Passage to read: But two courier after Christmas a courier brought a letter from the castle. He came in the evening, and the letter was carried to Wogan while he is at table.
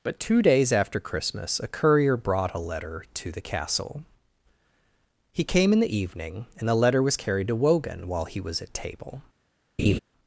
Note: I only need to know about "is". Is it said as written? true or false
false